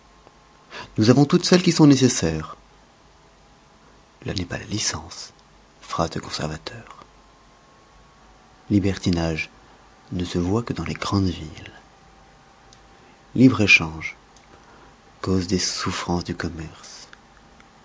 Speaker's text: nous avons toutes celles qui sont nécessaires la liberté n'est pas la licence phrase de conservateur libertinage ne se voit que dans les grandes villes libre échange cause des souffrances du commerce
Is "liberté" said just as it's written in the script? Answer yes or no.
no